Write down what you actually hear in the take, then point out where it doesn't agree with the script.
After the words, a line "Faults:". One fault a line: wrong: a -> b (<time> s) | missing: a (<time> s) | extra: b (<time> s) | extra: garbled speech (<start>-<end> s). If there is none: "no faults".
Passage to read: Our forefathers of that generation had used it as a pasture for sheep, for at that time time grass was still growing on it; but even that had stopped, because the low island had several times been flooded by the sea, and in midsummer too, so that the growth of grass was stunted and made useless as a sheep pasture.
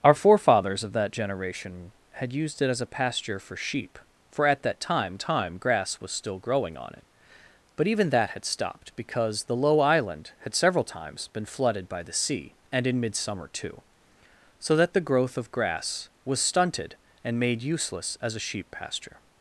Our forefathers of that generation had used it as a pasture for sheep, for at that time time grass was still growing on it; but even that had stopped, because the low island had several times been flooded by the sea, and in midsummer too, so that the growth of grass was stunted and made useless as a sheep pasture.
Faults:
no faults